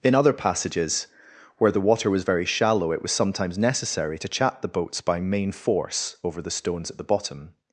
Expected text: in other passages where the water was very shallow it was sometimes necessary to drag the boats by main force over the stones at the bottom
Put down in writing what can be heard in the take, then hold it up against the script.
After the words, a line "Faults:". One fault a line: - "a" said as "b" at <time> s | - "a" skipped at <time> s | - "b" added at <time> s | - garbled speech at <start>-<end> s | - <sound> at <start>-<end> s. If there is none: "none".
in other passages where the water was very shallow it was sometimes necessary to chat the boats by main force over the stones at the bottom
Faults:
- "drag" said as "chat" at 4.3 s